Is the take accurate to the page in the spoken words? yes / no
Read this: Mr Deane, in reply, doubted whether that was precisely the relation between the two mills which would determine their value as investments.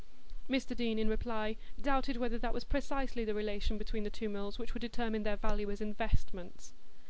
yes